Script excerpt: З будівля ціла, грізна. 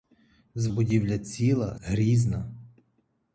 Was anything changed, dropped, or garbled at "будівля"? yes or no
no